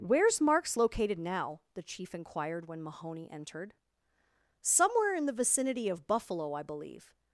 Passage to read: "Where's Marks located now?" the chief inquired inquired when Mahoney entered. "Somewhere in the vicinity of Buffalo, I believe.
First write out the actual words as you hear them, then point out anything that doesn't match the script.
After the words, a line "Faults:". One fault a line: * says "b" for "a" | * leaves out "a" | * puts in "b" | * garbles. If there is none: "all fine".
"Where's Marks located now?" the chief inquired when Mahoney entered. "Somewhere in the vicinity of Buffalo, I believe.
Faults:
* leaves out "inquired"